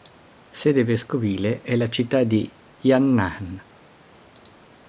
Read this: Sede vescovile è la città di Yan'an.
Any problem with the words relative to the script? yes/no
no